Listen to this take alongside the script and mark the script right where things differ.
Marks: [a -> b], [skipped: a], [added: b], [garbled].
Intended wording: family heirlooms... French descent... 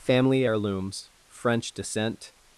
family heirlooms... French descent...